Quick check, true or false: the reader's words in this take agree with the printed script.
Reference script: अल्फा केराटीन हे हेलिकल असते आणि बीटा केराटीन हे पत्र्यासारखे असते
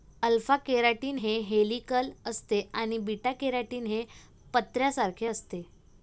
true